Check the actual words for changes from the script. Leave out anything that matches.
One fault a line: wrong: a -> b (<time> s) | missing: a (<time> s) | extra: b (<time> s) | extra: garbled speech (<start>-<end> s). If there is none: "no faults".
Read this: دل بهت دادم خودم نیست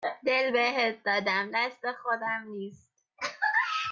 extra: دست (1.5 s)